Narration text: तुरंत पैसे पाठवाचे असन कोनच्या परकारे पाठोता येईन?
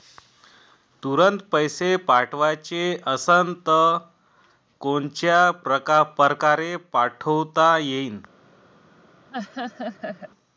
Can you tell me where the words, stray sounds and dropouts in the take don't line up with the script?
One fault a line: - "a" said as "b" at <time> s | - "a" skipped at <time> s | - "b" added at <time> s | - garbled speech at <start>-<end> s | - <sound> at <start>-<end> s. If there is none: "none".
- laugh at 9.3-10.3 s